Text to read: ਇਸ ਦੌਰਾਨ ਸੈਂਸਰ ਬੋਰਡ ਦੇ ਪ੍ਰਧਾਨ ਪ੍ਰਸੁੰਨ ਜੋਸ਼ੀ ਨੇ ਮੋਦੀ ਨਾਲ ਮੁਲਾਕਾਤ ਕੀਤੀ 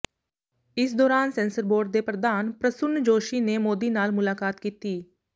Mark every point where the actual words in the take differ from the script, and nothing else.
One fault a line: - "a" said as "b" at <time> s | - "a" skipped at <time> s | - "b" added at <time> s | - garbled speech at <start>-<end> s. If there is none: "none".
none